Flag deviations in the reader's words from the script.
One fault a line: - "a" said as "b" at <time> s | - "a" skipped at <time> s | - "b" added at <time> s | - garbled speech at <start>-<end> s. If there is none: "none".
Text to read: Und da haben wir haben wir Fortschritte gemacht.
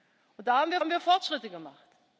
none